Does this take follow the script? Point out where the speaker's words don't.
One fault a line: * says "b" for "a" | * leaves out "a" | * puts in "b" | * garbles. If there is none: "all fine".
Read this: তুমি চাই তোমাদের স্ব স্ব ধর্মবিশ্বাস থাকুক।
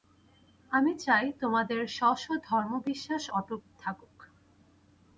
* says "আমি" for "তুমি"
* puts in "অটুট"